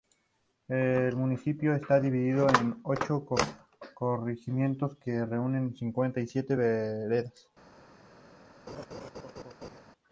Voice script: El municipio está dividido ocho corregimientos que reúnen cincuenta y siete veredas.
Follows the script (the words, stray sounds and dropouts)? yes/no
no